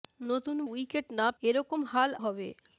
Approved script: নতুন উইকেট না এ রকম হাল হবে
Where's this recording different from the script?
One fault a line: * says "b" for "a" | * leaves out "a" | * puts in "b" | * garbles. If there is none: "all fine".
all fine